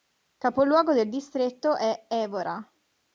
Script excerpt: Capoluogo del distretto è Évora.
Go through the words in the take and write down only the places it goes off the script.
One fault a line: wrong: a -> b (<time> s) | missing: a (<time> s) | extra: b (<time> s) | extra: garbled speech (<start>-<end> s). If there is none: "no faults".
no faults